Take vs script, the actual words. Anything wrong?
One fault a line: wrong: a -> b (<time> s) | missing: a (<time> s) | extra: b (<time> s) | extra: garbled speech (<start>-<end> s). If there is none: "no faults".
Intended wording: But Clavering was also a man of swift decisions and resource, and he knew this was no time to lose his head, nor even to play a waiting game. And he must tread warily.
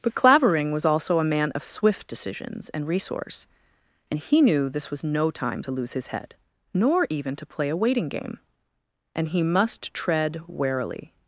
no faults